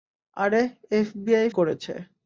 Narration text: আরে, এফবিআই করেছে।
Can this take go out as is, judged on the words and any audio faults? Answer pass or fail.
pass